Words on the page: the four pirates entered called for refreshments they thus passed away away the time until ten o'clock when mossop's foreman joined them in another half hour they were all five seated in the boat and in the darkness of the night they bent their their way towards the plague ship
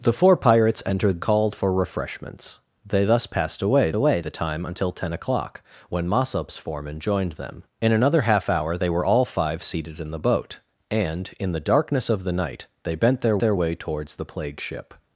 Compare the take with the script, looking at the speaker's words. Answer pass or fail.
pass